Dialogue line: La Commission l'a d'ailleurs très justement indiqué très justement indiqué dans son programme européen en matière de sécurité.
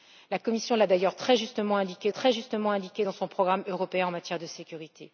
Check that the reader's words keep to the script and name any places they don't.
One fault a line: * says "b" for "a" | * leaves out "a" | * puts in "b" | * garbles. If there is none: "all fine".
all fine